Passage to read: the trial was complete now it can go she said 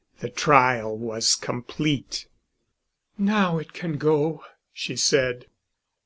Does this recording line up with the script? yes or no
yes